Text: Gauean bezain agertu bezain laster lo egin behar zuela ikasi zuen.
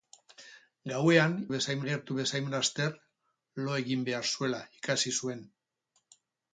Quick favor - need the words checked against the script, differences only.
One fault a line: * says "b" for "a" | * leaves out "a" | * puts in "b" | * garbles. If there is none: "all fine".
all fine